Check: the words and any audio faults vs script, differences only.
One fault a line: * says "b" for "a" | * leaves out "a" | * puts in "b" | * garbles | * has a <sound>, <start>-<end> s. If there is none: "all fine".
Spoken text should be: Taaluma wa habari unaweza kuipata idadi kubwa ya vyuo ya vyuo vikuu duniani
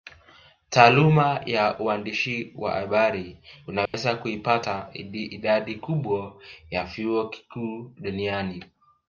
* puts in "ya uandishi"
* has a dropout, 3.9-3.9 s
* leaves out "ya vyuo"